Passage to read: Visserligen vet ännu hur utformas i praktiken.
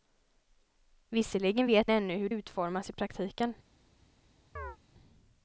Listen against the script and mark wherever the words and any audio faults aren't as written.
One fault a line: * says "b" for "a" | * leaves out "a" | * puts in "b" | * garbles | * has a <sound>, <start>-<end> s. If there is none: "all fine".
* has a chirp, 4.6-4.8 s